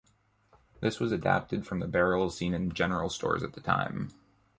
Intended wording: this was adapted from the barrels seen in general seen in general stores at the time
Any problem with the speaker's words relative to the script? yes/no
yes